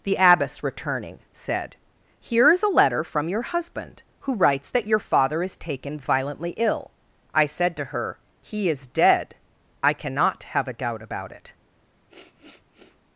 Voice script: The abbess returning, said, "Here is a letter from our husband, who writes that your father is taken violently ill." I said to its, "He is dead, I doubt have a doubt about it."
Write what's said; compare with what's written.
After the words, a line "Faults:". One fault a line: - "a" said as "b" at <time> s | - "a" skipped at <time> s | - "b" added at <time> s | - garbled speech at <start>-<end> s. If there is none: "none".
The abbess returning, said, "Here is a letter from your husband, who writes that your father is taken violently ill." I said to her, "He is dead, I cannot have a doubt about it."
Faults:
- "our" said as "your" at 3.3 s
- "its" said as "her" at 7.9 s
- "doubt" said as "cannot" at 9.9 s